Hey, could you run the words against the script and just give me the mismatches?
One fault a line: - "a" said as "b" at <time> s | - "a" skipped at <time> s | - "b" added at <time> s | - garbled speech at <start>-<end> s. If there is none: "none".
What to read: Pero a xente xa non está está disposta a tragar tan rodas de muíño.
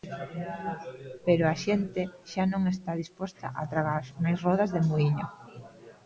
- "está" skipped at 2.9 s
- "tan" said as "máis" at 4.2 s